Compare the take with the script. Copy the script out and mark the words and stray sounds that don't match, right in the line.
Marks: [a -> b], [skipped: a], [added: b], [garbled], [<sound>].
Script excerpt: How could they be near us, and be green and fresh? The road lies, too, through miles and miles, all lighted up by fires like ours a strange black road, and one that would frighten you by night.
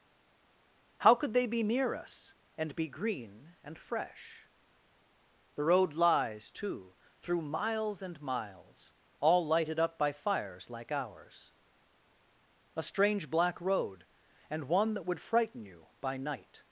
How could they be near us, and be green and fresh? The road lies, too, through miles and miles, all lighted up by fires like ours a strange black road, and one that would frighten you by night.